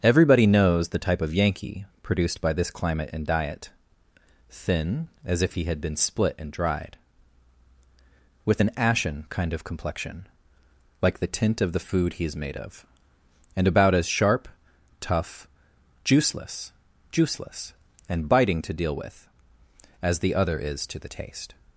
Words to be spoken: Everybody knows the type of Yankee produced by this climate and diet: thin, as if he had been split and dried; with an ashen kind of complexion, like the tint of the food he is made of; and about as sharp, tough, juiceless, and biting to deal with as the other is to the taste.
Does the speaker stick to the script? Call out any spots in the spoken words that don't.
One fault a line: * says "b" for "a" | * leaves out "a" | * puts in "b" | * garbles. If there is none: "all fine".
* puts in "juiceless"